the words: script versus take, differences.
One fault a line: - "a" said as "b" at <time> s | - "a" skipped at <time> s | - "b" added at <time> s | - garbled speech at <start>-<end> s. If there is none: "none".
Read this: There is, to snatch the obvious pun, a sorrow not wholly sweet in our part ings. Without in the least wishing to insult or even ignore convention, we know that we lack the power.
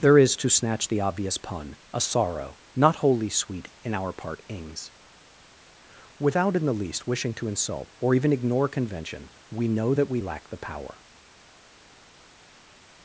none